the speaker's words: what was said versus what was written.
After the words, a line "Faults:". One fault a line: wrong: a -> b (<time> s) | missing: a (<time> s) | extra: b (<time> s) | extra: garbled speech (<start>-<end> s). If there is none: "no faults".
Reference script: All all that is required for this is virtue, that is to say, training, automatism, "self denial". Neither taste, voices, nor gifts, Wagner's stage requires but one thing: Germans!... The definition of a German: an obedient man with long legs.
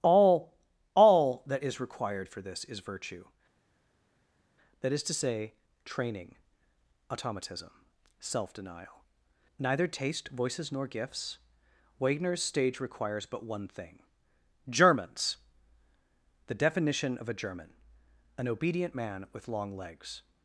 All all that is required for this is virtue, that is to say, training, automatism, "self denial". Neither taste, voices, nor gifts, Wagner's stage requires but one thing: Germans!... The definition of a German: an obedient man with long legs.
Faults:
no faults